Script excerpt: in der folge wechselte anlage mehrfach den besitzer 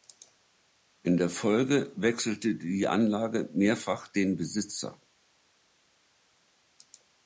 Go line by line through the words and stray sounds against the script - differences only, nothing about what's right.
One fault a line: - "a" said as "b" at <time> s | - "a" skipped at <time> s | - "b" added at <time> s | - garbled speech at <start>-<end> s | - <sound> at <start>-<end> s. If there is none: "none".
- "die" added at 2.5 s